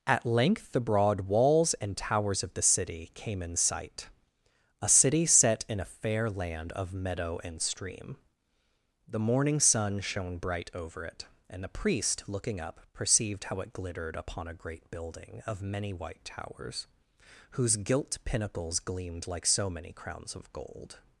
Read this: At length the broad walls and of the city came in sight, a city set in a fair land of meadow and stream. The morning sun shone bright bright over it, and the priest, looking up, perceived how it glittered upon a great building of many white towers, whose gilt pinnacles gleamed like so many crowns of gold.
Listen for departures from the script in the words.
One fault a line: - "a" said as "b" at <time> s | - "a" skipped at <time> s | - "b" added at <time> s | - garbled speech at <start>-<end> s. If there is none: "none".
- "towers" added at 1.9 s
- "bright" skipped at 10.7 s